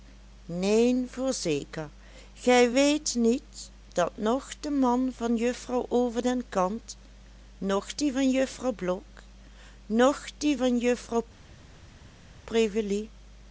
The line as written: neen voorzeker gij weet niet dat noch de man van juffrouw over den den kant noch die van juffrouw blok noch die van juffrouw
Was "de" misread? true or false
false